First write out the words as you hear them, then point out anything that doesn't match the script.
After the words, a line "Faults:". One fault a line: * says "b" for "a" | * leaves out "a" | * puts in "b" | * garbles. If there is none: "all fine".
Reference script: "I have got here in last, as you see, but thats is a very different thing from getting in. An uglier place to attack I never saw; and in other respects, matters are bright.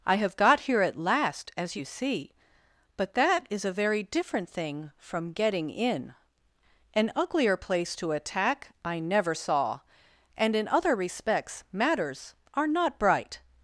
"I have got here at last, as you see, but that is a very different thing from getting in. An uglier place to attack I never saw; and in other respects, matters are not bright.
Faults:
* says "at" for "in"
* says "that" for "thats"
* puts in "not"